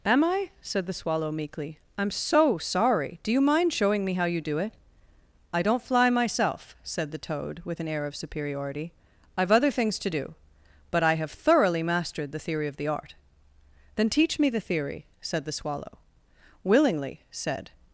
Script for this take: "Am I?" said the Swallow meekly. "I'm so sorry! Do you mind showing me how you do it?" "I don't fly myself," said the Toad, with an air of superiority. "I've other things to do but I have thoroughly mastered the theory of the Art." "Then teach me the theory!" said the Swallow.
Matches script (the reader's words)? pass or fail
fail